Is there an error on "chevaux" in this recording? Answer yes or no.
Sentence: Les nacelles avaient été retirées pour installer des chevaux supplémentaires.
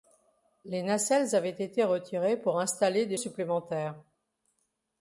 yes